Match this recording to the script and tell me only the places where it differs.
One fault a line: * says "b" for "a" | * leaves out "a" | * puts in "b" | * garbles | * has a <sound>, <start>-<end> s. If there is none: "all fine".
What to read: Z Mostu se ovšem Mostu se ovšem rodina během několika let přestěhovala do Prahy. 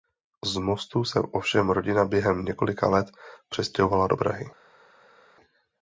* leaves out "Mostu se ovšem"